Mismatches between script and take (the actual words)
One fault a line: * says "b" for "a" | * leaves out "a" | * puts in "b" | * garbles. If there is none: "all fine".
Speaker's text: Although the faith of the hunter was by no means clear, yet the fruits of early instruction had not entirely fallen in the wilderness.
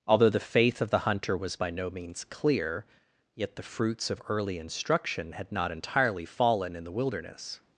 all fine